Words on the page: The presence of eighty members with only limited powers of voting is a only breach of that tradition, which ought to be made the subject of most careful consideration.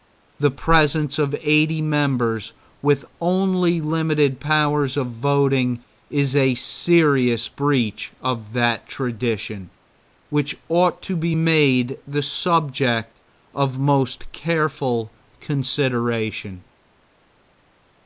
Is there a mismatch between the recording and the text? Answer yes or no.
yes